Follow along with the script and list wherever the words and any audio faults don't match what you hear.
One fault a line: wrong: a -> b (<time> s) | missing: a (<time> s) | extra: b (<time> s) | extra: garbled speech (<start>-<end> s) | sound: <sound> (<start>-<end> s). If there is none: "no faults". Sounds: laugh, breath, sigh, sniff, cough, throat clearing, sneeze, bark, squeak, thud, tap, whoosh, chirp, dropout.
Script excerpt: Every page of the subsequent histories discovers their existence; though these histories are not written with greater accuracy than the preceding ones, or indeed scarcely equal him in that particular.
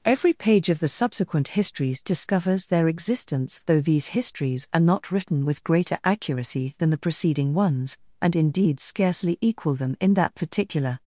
wrong: or -> and (8.2 s)
wrong: him -> them (9.8 s)